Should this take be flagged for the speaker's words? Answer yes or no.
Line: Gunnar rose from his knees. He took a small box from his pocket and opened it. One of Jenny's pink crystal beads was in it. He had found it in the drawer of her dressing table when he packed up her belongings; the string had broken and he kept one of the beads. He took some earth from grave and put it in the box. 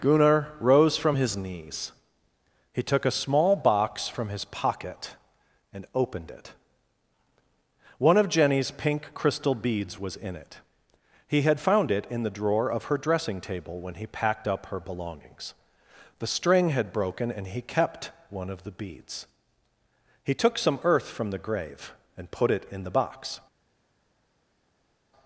yes